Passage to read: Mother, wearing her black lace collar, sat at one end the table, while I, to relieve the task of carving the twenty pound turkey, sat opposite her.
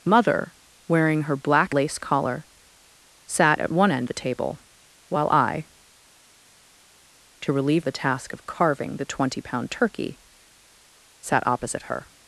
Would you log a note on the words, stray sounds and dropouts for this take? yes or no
no